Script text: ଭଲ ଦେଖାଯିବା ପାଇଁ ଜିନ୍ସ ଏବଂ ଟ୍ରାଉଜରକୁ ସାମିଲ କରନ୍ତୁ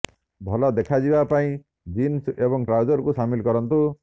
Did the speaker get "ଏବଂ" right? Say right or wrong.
right